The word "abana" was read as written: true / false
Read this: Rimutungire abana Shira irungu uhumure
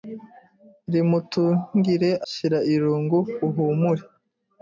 false